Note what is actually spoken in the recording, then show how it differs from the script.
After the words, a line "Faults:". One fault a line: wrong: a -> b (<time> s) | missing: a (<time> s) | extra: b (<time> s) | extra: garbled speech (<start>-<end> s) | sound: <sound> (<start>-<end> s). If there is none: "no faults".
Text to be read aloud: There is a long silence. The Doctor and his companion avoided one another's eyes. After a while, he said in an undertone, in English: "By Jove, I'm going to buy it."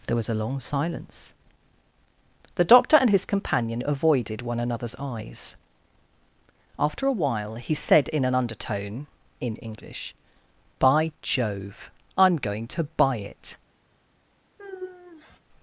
There was a long silence. The Doctor and his companion avoided one another's eyes. After a while, he said in an undertone, in English: "By Jove, I'm going to buy it."
Faults:
wrong: is -> was (0.1 s)
sound: sigh (14.6-15.4 s)